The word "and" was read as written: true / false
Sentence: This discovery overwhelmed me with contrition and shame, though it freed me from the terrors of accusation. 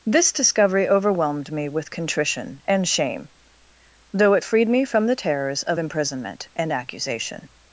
true